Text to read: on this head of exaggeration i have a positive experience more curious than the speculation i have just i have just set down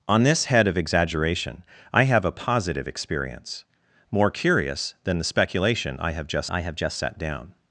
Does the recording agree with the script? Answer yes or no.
yes